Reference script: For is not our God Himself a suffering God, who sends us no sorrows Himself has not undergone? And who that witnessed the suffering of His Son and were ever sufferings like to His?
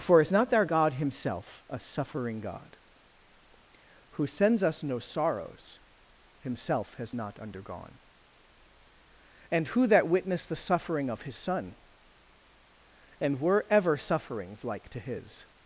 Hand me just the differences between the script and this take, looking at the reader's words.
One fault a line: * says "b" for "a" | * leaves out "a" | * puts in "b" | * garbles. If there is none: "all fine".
all fine